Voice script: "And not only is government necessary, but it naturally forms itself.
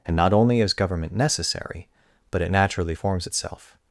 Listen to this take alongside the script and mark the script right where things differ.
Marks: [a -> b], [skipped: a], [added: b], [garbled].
"And not only is government necessary, but it naturally forms itself.